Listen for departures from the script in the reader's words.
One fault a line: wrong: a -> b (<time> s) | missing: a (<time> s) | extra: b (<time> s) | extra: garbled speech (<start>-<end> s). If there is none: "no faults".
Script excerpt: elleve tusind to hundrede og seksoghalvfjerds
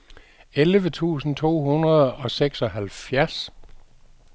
no faults